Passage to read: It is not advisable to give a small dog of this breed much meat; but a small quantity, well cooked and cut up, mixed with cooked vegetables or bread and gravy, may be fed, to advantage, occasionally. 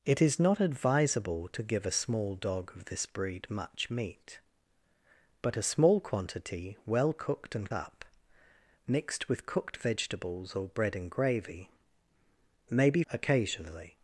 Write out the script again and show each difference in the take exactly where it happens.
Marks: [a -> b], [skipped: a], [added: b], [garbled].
It is not advisable to give a small dog of this breed much meat; but a small quantity, well cooked and [skipped: cut] up, mixed with cooked vegetables or bread and gravy, may be [skipped: fed, to advantage,] occasionally.